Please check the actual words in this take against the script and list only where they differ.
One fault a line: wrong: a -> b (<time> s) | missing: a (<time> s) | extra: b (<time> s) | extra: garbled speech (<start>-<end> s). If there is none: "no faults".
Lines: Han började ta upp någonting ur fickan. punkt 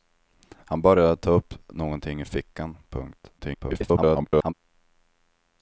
extra: garbled speech (3.4-4.5 s)